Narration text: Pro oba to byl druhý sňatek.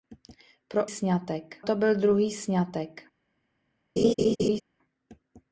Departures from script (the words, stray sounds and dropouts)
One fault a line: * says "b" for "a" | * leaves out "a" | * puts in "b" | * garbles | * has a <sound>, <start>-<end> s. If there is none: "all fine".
* says "sňatek" for "oba"
* has a laugh, 4.0-4.6 s